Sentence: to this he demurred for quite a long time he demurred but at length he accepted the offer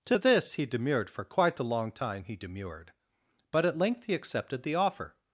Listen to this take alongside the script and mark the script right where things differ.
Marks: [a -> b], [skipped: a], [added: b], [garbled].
to this he demurred for quite a long time he demurred but at length he accepted the offer